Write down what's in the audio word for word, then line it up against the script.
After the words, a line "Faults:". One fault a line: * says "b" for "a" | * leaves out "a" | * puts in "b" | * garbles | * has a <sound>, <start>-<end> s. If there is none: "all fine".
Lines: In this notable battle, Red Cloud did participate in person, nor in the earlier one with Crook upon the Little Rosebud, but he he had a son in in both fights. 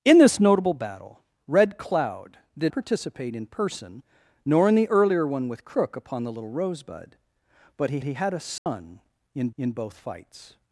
In this notable battle, Red Cloud did participate in person, nor in the earlier one with Crook upon the Little Rosebud, but he he had a son in in both fights.
Faults:
* has a dropout, 8.6-8.7 s